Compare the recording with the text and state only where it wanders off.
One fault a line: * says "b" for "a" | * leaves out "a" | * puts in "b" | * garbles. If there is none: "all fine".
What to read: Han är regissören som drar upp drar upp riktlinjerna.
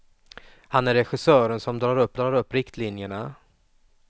all fine